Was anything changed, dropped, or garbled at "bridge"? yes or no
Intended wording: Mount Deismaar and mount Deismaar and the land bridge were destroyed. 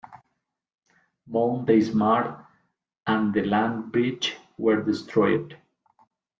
no